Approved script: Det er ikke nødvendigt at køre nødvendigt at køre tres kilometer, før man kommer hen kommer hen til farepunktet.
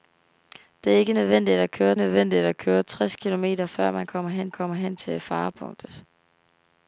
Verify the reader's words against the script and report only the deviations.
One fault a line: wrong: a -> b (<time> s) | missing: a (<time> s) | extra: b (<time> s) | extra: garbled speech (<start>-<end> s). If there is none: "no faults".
no faults